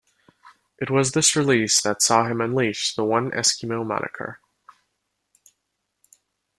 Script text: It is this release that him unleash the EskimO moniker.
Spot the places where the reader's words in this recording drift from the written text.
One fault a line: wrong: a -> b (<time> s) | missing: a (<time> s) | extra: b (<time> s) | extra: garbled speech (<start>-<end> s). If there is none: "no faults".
wrong: is -> was (0.9 s)
extra: saw (2.0 s)
extra: One (3.0 s)